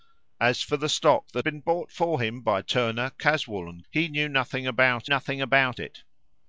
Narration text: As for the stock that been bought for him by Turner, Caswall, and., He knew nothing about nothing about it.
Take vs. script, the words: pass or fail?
pass